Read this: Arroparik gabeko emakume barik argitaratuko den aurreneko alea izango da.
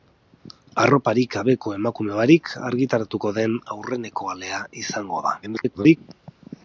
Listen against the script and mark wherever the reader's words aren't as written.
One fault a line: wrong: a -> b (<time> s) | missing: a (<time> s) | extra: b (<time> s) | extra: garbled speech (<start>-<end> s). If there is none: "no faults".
extra: garbled speech (5.4-6.0 s)